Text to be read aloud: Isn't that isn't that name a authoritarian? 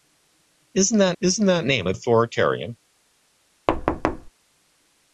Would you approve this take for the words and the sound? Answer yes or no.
no